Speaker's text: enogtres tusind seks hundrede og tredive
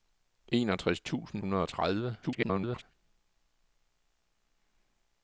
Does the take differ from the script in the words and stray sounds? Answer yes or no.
yes